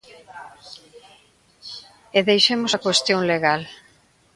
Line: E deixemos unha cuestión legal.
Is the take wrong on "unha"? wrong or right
wrong